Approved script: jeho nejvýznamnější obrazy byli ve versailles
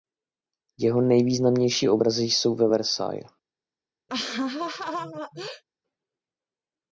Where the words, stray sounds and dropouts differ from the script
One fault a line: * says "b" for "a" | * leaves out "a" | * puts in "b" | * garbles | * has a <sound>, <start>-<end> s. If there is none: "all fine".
* says "jsou" for "byli"
* has a laugh, 4.1-5.6 s